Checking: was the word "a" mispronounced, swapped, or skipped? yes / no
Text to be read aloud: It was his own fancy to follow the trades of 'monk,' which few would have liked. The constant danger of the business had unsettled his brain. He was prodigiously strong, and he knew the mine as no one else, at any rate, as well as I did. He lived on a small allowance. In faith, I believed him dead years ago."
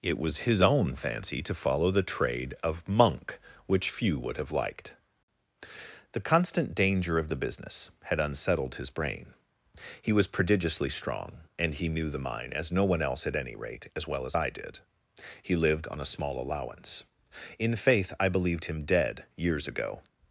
no